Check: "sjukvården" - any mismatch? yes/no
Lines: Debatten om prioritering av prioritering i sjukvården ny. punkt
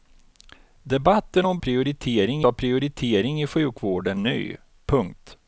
no